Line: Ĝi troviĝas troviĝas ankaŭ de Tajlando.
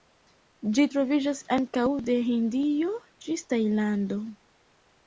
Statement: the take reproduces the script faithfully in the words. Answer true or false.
false